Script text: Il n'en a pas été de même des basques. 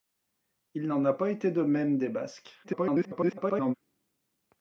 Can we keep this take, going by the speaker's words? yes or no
no